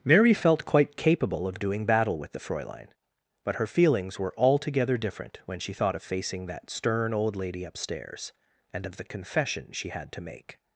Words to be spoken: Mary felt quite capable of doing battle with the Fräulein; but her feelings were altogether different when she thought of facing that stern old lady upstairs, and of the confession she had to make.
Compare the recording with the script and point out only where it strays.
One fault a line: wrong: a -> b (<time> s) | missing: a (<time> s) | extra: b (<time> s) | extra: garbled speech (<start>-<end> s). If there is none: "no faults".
no faults